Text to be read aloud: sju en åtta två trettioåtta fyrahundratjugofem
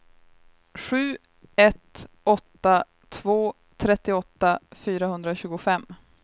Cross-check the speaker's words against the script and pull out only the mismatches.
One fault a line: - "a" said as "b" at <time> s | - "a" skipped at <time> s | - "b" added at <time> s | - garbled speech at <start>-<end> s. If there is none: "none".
- "en" said as "ett" at 1.6 s